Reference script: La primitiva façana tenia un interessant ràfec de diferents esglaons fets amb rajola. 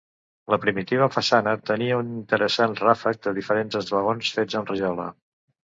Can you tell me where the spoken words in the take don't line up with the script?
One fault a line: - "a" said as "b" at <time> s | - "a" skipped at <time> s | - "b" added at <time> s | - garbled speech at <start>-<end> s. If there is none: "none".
none